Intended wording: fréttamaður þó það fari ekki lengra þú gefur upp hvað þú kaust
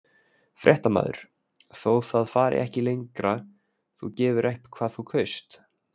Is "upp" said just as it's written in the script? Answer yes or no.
yes